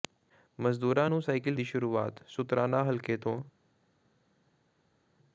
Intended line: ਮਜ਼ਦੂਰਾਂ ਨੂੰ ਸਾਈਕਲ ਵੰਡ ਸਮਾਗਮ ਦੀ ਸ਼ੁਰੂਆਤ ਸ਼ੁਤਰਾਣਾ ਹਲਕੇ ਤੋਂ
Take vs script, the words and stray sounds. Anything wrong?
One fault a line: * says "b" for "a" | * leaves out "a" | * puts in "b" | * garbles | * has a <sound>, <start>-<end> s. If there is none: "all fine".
* leaves out "ਵੰਡ ਸਮਾਗਮ"